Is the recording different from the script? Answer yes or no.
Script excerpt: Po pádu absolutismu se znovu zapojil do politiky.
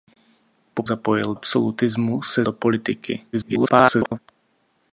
yes